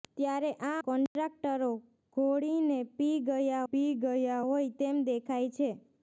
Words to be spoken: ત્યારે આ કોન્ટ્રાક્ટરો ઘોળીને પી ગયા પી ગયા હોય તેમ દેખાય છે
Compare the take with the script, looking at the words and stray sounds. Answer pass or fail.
fail